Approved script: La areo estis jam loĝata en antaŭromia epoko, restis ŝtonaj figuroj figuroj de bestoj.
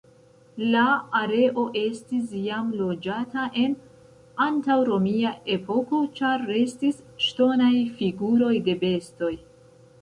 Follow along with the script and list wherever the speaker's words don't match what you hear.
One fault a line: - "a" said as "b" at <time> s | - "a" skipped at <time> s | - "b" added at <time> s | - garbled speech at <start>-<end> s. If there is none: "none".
- "ĉar" added at 6.2 s
- "figuroj" skipped at 8.5 s